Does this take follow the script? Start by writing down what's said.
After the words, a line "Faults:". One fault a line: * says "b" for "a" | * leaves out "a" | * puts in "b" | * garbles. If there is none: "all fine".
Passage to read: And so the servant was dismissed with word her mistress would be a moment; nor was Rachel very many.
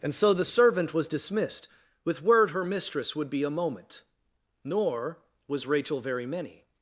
And so the servant was dismissed with word her mistress would be a moment; nor was Rachel very many.
Faults:
all fine